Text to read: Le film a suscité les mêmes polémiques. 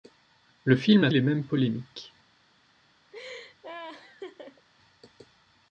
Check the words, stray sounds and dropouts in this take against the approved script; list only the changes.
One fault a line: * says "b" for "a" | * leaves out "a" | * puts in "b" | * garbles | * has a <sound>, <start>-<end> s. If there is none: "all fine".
* leaves out "suscité"
* has a laugh, 3.1-4.7 s